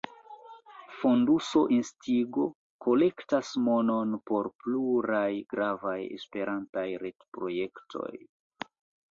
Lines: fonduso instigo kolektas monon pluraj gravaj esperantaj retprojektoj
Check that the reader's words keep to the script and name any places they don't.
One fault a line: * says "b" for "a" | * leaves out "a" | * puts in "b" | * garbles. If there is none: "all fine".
* puts in "por"